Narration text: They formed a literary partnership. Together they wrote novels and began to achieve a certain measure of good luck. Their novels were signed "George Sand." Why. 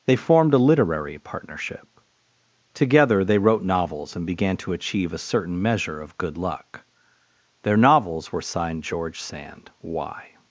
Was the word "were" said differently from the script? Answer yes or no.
no